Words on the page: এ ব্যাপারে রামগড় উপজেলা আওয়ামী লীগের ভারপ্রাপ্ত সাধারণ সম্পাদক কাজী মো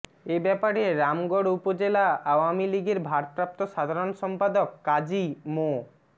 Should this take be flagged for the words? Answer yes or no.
no